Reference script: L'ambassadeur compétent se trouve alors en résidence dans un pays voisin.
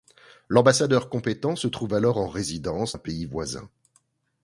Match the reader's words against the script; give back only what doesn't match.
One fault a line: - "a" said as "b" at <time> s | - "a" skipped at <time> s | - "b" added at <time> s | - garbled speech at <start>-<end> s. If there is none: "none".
- "dans" skipped at 3.0 s